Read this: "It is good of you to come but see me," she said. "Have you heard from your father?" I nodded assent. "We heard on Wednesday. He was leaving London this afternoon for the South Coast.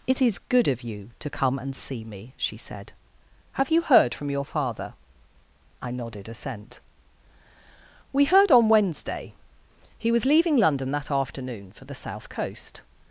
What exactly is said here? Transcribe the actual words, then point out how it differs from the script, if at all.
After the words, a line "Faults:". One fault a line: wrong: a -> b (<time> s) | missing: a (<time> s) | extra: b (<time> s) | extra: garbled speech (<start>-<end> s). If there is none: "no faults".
"It is good of you to come and see me," she said. "Have you heard from your father?" I nodded assent. "We heard on Wednesday. He was leaving London that afternoon for the South Coast.
Faults:
wrong: but -> and (1.6 s)
wrong: this -> that (10.9 s)